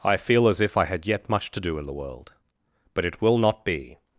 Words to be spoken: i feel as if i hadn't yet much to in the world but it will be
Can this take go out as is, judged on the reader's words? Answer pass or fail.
fail